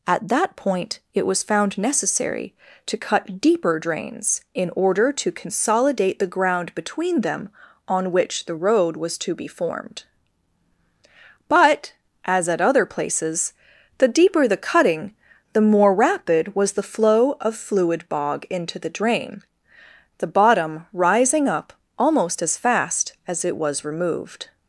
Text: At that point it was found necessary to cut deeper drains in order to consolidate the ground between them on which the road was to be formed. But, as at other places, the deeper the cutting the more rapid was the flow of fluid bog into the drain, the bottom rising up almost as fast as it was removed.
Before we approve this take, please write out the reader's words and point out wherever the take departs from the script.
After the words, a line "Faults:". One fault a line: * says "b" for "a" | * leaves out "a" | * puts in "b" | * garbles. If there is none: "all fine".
At that point it was found necessary to cut deeper drains in order to consolidate the ground between them on which the road was to be formed. But, as at other places, the deeper the cutting the more rapid was the flow of fluid bog into the drain, the bottom rising up almost as fast as it was removed.
Faults:
all fine